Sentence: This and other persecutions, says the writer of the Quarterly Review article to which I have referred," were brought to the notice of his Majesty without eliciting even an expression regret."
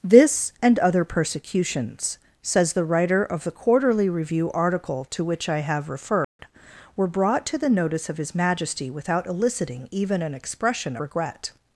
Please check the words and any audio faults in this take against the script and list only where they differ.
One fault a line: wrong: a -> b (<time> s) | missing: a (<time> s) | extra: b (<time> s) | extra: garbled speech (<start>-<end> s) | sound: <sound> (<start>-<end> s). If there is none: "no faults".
sound: dropout (6.2-6.4 s)